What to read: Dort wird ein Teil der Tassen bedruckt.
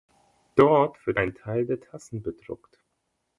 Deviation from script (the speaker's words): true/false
false